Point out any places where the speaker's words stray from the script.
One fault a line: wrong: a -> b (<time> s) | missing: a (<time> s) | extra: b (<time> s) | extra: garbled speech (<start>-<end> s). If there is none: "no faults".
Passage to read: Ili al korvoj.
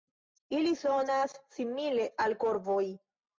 extra: sonas simile (0.8 s)